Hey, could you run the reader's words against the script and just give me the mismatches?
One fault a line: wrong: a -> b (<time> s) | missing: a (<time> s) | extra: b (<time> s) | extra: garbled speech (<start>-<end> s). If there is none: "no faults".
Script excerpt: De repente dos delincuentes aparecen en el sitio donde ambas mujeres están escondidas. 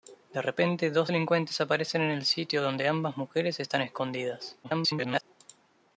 extra: garbled speech (4.6-5.2 s)